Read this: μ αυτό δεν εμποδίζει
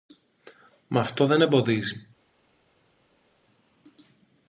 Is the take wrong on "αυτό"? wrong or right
right